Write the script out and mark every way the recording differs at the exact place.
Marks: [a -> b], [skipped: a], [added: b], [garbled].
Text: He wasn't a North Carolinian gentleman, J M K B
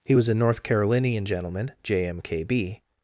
He [wasn't -> was] a North Carolinian gentleman, J M K B